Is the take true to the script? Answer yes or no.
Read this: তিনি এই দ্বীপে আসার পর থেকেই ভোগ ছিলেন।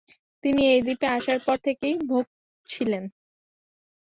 yes